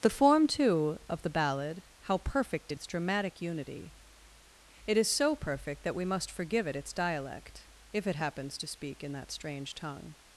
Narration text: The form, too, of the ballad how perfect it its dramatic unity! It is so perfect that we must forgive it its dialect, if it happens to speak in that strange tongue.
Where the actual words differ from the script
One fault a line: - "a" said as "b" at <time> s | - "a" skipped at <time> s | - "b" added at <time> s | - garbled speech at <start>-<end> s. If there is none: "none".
none